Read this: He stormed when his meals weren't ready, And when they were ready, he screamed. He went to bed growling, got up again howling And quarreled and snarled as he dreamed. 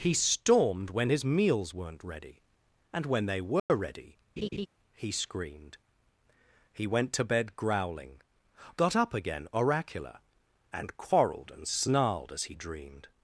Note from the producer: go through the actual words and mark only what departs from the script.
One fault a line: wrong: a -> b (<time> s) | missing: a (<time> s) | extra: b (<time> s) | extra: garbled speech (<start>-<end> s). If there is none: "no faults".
wrong: howling -> oracular (9.5 s)